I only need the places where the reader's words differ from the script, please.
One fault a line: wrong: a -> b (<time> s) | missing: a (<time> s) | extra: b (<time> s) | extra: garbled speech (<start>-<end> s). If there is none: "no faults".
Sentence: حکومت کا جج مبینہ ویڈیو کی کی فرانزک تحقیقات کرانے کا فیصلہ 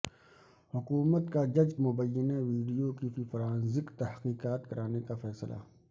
no faults